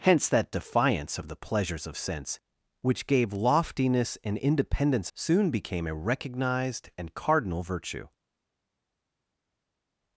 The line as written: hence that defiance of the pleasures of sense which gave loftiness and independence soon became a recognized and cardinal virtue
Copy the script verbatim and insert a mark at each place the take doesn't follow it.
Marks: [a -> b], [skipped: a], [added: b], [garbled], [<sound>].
hence that defiance of the pleasures of sense which gave loftiness and independence soon became a recognized and cardinal virtue